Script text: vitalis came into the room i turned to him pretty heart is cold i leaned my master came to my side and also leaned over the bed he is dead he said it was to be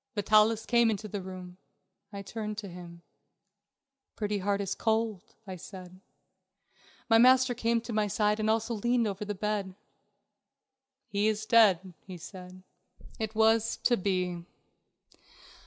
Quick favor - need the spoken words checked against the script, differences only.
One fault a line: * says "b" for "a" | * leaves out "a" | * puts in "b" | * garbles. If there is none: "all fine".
* says "said" for "leaned"